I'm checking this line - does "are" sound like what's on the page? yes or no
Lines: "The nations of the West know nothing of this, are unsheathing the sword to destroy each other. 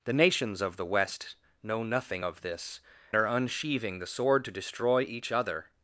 yes